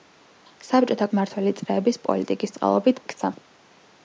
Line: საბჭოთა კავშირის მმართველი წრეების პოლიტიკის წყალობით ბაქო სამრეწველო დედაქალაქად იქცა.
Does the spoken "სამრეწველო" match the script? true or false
false